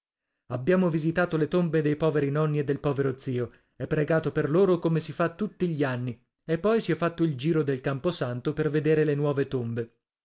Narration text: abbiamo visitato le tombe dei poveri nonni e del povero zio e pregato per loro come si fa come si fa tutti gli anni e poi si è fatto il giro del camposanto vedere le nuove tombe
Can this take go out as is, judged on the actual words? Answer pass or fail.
fail